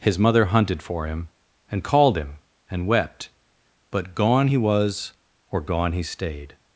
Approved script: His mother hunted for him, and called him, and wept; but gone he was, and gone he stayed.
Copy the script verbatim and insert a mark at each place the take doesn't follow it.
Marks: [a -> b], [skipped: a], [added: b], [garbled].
His mother hunted for him, and called him, and wept; but gone he was, [and -> or] gone he stayed.